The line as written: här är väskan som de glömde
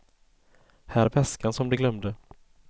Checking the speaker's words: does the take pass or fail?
pass